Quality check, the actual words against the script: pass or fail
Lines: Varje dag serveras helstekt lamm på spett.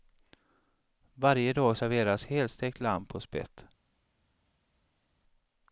pass